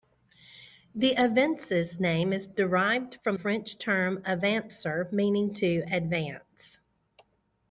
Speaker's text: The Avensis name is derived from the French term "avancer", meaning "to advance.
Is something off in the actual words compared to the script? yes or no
yes